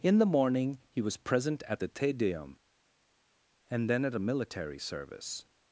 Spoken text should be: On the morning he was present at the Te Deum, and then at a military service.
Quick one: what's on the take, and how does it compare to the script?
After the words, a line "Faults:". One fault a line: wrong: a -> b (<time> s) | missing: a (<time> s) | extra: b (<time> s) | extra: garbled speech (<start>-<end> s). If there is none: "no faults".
In the morning he was present at the Te Deum, and then at a military service.
Faults:
wrong: On -> In (0.0 s)